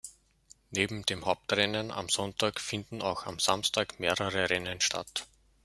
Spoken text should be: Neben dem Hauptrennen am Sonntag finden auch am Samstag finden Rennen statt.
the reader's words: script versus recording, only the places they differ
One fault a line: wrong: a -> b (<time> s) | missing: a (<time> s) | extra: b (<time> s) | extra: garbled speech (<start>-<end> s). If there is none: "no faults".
wrong: finden -> mehrere (4.0 s)